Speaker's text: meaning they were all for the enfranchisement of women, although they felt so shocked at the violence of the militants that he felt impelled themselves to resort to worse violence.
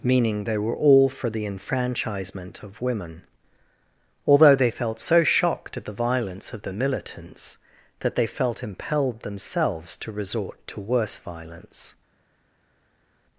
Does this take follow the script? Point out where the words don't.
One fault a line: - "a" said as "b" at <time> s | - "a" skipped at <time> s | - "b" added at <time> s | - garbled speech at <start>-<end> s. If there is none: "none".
- "he" said as "they" at 8.2 s